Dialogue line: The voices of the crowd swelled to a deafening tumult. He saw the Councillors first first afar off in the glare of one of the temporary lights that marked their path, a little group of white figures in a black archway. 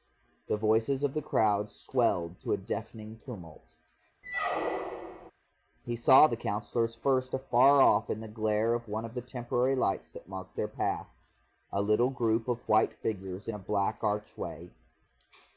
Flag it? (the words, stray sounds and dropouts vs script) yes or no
yes